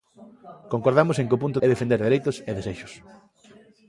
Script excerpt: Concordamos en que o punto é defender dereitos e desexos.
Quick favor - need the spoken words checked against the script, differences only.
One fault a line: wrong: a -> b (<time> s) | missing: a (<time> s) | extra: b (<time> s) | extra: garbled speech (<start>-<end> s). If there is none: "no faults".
no faults